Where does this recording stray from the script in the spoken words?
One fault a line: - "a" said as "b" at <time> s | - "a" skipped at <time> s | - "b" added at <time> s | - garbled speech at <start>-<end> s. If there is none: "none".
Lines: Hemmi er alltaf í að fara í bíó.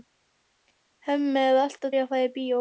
none